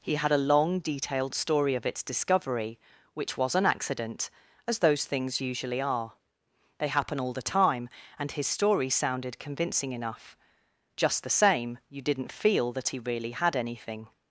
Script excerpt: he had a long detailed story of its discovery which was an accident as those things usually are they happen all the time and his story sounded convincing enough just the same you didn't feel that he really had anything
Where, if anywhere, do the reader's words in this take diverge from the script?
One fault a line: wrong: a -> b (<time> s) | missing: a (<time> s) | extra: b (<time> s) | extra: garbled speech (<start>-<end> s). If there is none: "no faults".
no faults